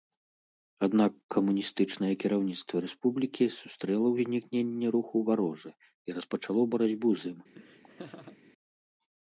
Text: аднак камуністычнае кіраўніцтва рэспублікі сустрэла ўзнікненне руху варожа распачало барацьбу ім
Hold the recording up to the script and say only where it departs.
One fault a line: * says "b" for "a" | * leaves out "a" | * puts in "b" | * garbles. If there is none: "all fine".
* puts in "і"
* puts in "з"